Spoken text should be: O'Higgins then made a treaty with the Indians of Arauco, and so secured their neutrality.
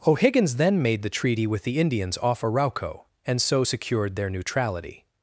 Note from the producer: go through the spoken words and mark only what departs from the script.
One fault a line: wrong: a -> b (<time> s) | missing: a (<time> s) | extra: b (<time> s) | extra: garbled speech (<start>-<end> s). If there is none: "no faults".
wrong: a -> the (1.0 s)
wrong: of -> off (2.2 s)